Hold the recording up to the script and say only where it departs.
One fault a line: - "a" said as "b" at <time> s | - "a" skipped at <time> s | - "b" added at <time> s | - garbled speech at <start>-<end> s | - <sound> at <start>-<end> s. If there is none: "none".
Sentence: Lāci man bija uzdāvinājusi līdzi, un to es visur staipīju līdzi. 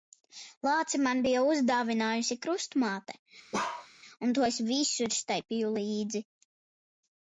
- "līdzi" said as "krustmāte" at 2.5 s
- bark at 3.5-3.9 s